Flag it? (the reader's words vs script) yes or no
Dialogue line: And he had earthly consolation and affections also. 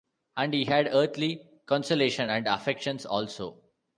no